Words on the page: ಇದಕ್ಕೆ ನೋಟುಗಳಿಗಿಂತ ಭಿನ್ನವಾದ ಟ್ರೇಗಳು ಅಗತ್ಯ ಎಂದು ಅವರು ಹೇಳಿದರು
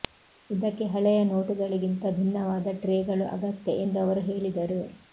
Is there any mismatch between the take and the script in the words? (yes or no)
yes